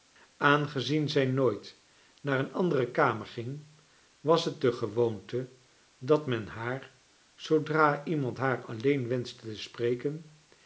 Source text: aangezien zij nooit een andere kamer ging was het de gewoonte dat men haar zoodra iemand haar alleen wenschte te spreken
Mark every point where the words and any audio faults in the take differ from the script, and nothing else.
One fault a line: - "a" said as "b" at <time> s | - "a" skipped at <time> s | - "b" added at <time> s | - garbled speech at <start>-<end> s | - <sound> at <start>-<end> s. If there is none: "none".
- "naar" added at 2.2 s